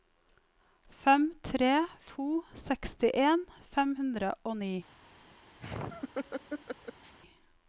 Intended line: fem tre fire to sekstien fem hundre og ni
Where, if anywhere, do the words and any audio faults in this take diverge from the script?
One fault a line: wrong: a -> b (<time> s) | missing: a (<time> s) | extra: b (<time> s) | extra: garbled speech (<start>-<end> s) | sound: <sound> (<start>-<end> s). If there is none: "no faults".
missing: fire (1.7 s)
sound: laugh (5.6-7.1 s)